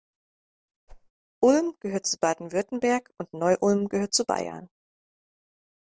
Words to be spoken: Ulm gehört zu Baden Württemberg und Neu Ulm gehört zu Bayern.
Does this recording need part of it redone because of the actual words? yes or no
no